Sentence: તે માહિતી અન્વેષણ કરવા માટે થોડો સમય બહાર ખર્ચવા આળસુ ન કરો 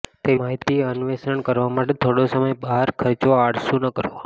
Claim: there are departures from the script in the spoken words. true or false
false